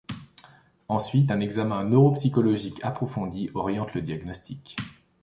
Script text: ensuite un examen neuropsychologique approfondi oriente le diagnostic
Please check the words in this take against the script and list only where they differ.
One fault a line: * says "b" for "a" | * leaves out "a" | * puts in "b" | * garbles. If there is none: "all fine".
all fine